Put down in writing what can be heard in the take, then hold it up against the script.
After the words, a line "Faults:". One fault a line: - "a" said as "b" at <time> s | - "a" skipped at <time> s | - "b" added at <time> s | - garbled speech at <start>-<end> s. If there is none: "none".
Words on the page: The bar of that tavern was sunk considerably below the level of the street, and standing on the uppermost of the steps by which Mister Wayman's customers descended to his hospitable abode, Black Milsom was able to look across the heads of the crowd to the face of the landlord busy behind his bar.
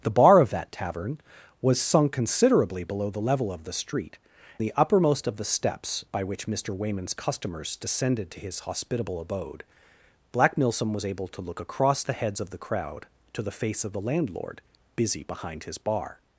The bar of that tavern was sunk considerably below the level of the street, the uppermost of the steps by which Mister Wayman's customers descended to his hospitable abode, Black Milsom was able to look across the heads of the crowd to the face of the landlord busy behind his bar.
Faults:
- "and standing on" skipped at 4.2 s